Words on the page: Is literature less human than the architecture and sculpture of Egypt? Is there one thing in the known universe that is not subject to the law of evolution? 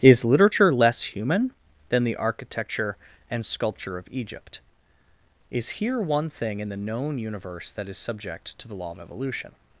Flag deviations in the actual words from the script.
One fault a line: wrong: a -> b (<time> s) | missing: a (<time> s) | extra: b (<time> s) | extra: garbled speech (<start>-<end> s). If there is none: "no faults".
wrong: there -> here (5.7 s)
missing: not (8.0 s)